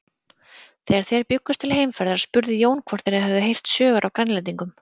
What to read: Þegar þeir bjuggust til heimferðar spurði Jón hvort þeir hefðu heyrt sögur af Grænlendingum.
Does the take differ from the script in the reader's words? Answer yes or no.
no